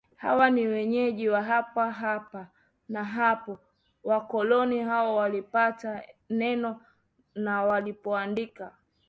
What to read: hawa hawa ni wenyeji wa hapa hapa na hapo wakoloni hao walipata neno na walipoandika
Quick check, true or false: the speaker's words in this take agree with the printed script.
false